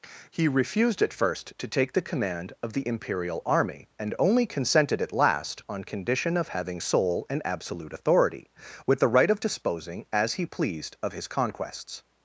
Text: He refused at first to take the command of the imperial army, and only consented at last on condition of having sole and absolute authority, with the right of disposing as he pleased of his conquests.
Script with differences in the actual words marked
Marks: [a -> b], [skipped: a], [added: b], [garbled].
He refused at first to take the command of the imperial army, and only consented at last on condition of having sole and absolute authority, with the right of disposing as he pleased of his conquests.